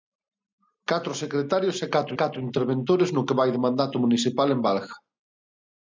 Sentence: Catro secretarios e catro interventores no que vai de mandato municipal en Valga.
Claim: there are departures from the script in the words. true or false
true